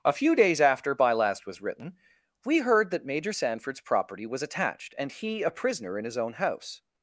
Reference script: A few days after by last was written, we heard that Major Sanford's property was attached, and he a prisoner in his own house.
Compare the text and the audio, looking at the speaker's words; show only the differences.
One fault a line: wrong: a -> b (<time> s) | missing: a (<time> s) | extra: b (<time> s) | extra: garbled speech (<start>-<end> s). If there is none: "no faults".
no faults